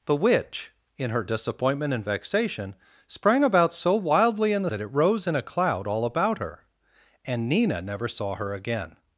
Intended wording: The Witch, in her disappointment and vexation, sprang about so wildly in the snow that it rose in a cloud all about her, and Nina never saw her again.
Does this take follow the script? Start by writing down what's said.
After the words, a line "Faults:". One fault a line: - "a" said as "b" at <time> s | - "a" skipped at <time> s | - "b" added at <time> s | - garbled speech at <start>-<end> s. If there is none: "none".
The Witch, in her disappointment and vexation, sprang about so wildly in the that it rose in a cloud all about her, and Nina never saw her again.
Faults:
- "snow" skipped at 4.7 s